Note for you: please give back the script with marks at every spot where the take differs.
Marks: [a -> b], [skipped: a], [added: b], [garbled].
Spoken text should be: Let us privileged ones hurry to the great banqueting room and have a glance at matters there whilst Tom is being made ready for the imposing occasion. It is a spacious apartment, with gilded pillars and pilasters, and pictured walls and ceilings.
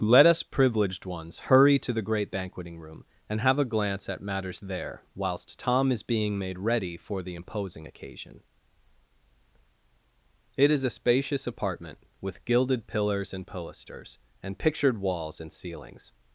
Let us privileged ones hurry to the great banqueting room and have a glance at matters there whilst Tom is being made ready for the imposing occasion. It is a spacious apartment, with gilded pillars and pilasters, and pictured walls and ceilings.